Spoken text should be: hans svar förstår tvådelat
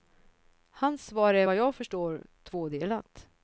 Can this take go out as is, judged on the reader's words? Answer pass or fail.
fail